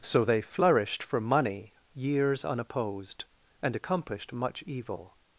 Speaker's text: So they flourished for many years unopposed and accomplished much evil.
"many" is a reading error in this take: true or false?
true